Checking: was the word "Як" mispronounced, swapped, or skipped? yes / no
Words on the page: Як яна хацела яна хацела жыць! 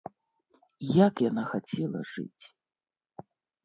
no